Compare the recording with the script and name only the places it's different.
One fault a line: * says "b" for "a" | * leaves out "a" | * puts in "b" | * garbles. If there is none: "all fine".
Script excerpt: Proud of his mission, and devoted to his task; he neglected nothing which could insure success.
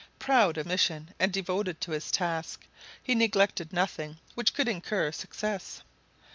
* leaves out "his"